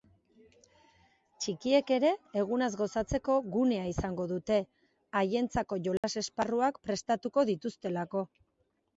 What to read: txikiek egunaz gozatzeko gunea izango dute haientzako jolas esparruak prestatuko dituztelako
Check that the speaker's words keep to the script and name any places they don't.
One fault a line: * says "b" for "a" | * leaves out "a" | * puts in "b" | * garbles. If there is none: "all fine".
* puts in "ere"